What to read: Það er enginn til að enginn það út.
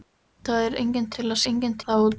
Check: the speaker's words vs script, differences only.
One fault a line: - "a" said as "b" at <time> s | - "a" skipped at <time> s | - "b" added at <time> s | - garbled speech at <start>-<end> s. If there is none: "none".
none